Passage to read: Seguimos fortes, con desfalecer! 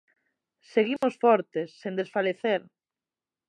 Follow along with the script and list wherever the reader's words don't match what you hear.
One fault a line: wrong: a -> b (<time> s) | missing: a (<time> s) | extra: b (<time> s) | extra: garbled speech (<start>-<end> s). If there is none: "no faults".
wrong: con -> sen (1.8 s)